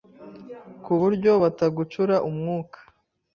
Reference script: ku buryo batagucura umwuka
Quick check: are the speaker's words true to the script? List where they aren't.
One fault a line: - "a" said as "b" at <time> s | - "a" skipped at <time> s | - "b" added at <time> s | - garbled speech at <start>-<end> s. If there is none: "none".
none